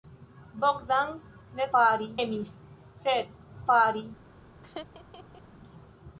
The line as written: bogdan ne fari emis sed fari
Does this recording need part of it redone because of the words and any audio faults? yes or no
yes